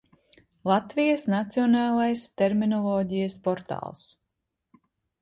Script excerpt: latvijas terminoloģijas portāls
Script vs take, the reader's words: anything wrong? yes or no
yes